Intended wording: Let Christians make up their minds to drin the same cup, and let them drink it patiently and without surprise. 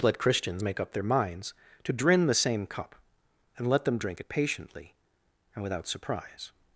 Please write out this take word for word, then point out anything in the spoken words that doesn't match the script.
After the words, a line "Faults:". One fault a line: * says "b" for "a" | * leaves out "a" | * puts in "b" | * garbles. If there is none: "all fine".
Let Christians make up their minds to drin the same cup, and let them drink it patiently and without surprise.
Faults:
all fine